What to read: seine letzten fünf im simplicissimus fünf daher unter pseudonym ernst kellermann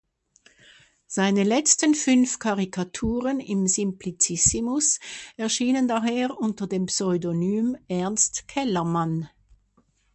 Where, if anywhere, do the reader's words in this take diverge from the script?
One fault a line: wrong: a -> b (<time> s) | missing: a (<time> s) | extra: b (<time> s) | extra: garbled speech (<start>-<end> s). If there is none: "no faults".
extra: karikaturen (2.4 s)
wrong: fünf -> erschienen (5.4 s)
extra: dem (6.7 s)